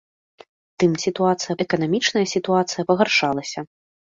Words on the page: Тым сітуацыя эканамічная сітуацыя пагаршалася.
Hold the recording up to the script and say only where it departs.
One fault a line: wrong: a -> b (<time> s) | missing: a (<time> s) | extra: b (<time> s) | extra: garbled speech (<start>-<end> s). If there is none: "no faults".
no faults